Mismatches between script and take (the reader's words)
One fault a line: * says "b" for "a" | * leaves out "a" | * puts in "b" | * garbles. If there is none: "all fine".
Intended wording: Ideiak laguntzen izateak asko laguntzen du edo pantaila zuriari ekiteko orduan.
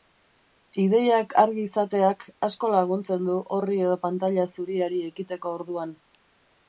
* says "argi" for "laguntzen"
* puts in "orri"